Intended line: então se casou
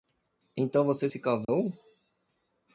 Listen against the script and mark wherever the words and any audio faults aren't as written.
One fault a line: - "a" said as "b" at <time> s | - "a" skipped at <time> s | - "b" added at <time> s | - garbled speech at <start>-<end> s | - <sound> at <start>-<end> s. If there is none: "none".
- "você" added at 0.8 s
- dropout at 1.4-1.5 s